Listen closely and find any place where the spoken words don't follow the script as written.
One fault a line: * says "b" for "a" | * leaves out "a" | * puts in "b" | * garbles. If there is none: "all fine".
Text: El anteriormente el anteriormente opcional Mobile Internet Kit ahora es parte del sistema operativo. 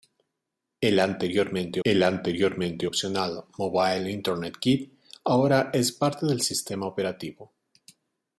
all fine